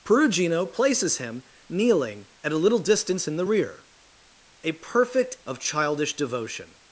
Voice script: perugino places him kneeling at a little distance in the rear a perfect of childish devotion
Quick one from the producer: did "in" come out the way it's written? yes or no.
yes